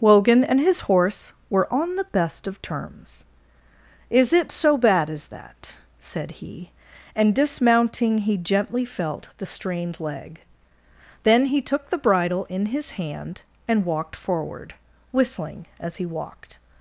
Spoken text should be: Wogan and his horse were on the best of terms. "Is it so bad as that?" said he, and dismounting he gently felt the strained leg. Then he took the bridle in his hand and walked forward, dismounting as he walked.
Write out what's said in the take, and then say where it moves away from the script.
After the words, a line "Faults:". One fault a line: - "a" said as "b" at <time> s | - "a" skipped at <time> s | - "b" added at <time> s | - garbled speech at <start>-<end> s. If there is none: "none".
Wogan and his horse were on the best of terms. "Is it so bad as that?" said he, and dismounting he gently felt the strained leg. Then he took the bridle in his hand and walked forward, whistling as he walked.
Faults:
- "dismounting" said as "whistling" at 15.1 s